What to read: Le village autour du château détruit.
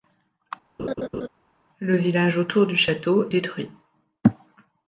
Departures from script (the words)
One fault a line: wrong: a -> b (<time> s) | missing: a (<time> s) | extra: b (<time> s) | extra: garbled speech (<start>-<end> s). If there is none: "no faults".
no faults